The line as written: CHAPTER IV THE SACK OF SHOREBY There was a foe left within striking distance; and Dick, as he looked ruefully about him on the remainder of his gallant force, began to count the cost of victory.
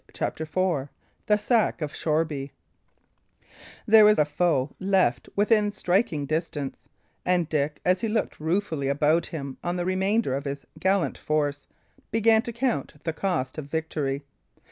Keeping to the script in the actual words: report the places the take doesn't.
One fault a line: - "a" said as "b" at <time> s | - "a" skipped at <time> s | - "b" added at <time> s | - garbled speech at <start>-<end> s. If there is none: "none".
none